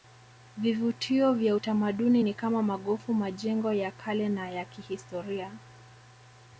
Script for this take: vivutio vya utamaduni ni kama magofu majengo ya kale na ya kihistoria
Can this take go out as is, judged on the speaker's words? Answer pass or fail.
pass